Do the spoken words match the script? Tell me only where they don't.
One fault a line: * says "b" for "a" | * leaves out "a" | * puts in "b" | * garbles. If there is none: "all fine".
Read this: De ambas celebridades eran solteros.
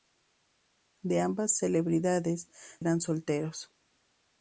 all fine